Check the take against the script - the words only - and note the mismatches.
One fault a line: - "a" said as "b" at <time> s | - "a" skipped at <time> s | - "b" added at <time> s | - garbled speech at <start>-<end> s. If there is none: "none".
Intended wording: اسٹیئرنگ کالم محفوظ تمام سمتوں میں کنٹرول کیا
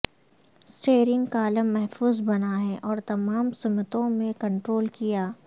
- "بنا ہے اور" added at 2.2 s